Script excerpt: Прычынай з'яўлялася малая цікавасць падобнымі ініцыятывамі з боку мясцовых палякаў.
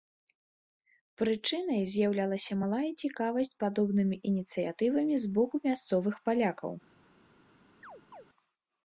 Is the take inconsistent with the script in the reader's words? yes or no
no